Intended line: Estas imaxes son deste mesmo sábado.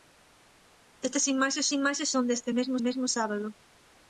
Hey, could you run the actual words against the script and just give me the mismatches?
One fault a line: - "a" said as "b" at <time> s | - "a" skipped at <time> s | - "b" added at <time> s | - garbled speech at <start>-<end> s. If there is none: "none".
- "imaxes" added at 1.8 s
- "mesmo" added at 2.9 s